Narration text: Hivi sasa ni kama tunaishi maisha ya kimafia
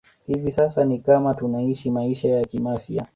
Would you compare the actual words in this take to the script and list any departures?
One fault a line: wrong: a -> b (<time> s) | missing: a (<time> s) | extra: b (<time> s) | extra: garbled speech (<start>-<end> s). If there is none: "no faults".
no faults